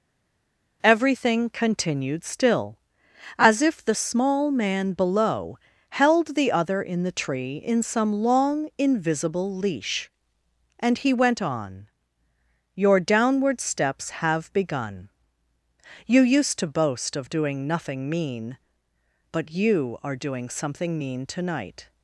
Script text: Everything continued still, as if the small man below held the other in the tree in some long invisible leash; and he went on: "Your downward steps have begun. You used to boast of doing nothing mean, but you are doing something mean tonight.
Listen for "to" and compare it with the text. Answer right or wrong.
right